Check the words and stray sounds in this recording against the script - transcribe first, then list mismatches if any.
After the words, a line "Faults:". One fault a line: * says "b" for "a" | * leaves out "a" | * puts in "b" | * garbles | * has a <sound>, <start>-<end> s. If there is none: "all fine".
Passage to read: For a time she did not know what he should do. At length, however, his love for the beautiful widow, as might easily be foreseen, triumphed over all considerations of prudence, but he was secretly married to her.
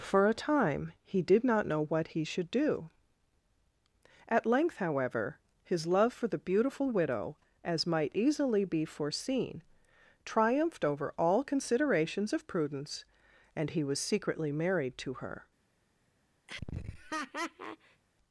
For a time he did not know what he should do. At length, however, his love for the beautiful widow, as might easily be foreseen, triumphed over all considerations of prudence, and he was secretly married to her.
Faults:
* says "he" for "she"
* says "and" for "but"
* has a laugh, 16.5-18.0 s